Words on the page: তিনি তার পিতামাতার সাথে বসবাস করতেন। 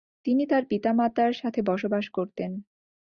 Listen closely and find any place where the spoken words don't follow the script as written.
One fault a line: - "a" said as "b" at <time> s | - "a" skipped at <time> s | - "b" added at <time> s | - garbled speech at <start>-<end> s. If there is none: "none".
none